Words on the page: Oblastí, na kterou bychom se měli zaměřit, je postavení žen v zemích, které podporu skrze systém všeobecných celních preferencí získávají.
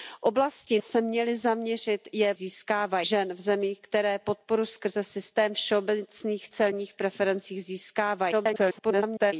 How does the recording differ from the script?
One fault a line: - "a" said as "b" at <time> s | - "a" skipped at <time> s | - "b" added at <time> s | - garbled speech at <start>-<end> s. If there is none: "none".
- "na kterou bychom" skipped at 0.8 s
- "postavení" said as "získávají" at 2.3 s
- garbled speech at 8.3-9.3 s